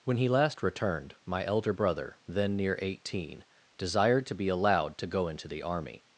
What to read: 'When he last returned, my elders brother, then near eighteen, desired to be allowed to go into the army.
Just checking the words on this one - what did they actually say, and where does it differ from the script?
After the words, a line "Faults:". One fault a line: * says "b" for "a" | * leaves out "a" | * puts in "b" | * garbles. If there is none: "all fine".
'When he last returned, my elder brother, then near eighteen, desired to be allowed to go into the army.
Faults:
* says "elder" for "elders"